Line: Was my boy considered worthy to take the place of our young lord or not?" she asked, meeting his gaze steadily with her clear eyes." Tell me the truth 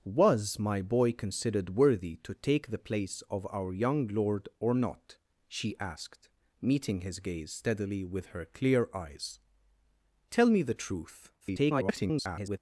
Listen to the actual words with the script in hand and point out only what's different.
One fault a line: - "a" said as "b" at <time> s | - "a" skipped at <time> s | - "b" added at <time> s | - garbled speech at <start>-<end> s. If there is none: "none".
- garbled speech at 11.4-12.6 s